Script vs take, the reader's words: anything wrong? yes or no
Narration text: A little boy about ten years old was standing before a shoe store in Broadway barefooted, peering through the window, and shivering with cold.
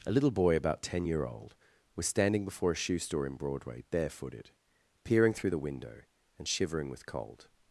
yes